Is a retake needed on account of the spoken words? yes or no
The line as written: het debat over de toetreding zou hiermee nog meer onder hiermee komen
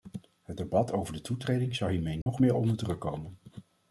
yes